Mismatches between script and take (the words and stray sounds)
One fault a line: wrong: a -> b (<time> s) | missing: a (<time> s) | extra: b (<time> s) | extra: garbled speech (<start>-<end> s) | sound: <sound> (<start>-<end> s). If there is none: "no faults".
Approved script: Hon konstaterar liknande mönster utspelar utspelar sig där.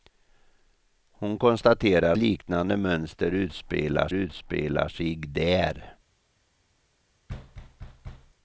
sound: thud (7.3-8.3 s)